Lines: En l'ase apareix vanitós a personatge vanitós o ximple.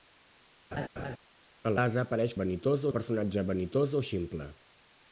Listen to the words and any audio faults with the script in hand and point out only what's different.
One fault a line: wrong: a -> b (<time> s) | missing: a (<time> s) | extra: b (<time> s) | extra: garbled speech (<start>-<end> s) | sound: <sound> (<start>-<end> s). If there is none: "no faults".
sound: laugh (0.7-1.2 s)